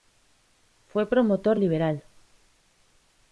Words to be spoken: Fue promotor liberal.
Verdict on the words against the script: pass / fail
pass